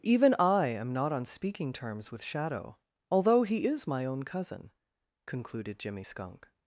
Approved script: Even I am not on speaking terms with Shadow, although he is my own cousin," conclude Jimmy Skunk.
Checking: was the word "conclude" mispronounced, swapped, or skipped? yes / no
yes